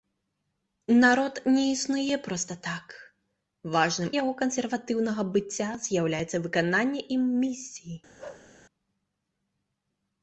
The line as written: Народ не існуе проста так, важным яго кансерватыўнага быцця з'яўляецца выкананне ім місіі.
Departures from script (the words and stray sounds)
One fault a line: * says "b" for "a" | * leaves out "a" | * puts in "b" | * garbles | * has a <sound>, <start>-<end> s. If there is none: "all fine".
* has a bark, 8.2-8.5 s